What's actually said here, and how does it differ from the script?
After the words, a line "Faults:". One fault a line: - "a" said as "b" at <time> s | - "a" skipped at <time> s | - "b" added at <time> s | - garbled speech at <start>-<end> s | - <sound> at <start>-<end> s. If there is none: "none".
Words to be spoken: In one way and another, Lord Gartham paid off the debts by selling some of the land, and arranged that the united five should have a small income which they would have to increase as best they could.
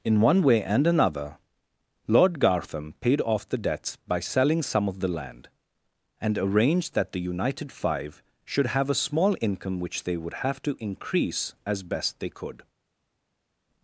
In one way and another, Lord Gartham paid off the debts by selling some of the land, and arranged that the united five should have a small income which they would have to increase as best they could.
Faults:
none